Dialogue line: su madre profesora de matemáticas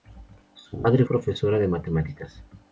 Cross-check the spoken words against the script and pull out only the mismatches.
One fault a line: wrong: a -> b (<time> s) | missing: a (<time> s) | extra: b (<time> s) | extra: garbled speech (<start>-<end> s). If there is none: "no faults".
no faults